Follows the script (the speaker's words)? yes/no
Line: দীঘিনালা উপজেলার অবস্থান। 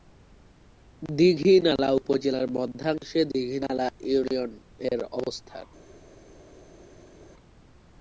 no